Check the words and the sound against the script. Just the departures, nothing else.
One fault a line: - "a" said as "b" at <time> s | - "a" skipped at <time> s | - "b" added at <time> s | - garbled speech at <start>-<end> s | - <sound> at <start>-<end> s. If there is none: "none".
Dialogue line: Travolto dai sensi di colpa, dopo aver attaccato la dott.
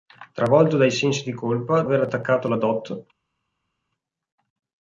- "dopo" skipped at 1.8 s